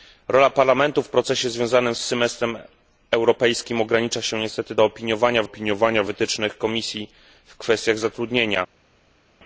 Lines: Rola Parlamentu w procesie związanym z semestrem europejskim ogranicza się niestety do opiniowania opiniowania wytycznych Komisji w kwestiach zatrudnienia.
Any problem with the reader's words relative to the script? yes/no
no